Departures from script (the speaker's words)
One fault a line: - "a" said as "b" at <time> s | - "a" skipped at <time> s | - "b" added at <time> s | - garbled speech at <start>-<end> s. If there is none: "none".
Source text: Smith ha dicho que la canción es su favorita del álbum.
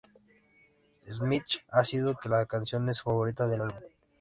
none